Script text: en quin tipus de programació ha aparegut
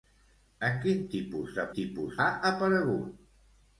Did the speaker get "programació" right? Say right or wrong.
wrong